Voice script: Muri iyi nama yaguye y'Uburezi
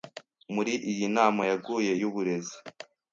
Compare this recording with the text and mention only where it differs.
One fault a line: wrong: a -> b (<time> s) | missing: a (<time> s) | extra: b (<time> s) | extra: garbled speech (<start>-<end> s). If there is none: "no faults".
no faults